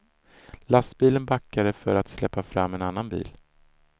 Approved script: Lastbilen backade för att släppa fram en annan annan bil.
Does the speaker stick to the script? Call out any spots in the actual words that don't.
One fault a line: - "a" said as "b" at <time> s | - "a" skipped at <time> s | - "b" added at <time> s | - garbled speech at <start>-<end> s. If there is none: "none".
- "annan" skipped at 3.1 s